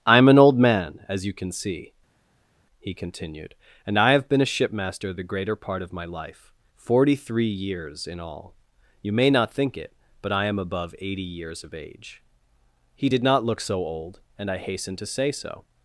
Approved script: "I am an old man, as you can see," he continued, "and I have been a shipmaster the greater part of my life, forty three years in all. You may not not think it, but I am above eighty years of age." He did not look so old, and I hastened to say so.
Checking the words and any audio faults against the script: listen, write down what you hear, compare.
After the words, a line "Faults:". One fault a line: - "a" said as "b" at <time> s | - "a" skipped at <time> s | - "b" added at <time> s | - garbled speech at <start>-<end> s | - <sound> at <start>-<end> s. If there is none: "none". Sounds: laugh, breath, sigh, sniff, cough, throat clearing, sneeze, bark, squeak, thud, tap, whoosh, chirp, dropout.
"I am an old man, as you can see," he continued, "and I have been a shipmaster the greater part of my life, forty three years in all. You may not think it, but I am above eighty years of age." He did not look so old, and I hastened to say so.
Faults:
- "not" skipped at 9.5 s